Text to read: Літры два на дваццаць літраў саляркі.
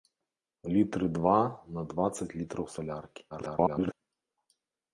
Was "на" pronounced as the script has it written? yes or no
yes